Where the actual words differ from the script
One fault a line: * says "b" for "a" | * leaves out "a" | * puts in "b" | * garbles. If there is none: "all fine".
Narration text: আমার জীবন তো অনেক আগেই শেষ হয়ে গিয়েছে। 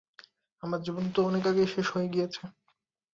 all fine